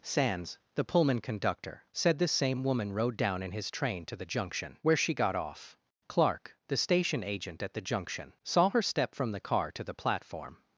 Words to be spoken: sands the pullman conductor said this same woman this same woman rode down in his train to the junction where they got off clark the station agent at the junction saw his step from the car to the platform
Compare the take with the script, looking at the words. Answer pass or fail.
fail